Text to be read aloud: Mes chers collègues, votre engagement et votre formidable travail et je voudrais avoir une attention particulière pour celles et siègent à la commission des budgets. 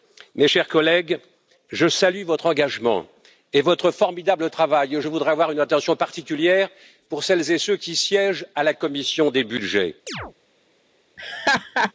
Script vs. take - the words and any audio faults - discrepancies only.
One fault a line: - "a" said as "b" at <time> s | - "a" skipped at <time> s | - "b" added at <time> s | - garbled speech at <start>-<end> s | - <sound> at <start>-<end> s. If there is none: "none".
- "je salue" added at 1.7 s
- "ceux qui" added at 7.6 s
- chirp at 10.1-10.3 s
- laugh at 11.2-11.9 s